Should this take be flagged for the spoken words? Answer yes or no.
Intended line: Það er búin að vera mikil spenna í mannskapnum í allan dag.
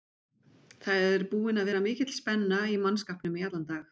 no